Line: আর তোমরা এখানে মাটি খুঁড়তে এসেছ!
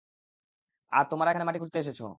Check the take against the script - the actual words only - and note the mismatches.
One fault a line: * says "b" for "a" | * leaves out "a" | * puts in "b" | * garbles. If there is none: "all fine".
all fine